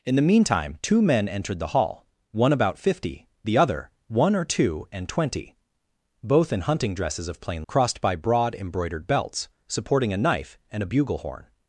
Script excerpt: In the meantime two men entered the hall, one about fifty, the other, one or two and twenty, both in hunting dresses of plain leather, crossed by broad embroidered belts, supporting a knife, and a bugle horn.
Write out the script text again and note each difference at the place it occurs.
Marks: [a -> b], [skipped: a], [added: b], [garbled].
In the meantime two men entered the hall, one about fifty, the other, one or two and twenty, both in hunting dresses of plain [skipped: leather,] crossed by broad embroidered belts, supporting a knife, and a bugle horn.